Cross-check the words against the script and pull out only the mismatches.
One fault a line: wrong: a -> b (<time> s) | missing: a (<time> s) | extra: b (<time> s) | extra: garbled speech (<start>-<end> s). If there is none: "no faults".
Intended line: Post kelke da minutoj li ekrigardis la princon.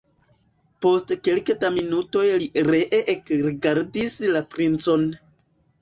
extra: ree (2.7 s)